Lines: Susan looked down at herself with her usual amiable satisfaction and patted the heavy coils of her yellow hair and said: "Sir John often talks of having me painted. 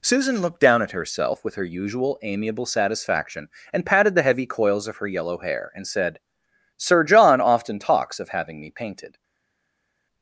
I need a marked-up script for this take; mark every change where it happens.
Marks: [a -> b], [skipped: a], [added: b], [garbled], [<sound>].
Susan looked down at herself with her usual amiable satisfaction and patted the heavy coils of her yellow hair and said: "Sir John often talks of having me painted.